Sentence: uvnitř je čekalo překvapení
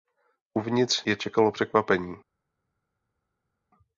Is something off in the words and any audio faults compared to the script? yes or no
no